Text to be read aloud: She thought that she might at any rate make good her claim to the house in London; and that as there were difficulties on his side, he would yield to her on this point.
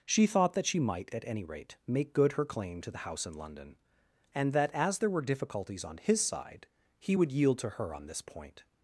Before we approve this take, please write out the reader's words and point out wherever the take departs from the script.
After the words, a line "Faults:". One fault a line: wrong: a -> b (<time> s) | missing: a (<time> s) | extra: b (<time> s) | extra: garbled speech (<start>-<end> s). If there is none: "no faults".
She thought that she might at any rate make good her claim to the house in London; and that as there were difficulties on his side, he would yield to her on this point.
Faults:
no faults